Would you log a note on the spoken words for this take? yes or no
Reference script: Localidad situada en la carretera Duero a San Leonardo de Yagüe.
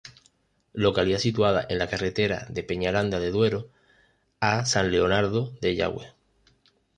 yes